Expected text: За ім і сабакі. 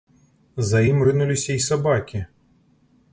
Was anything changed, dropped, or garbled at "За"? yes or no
no